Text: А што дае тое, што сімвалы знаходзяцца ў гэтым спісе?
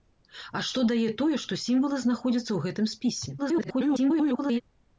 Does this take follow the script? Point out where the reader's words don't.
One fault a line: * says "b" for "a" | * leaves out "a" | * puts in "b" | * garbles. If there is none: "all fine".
* garbles